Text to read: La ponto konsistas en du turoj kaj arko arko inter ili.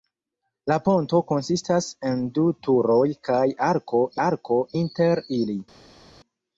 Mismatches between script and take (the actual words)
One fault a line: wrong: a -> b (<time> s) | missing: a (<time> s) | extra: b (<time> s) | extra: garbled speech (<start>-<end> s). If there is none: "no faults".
no faults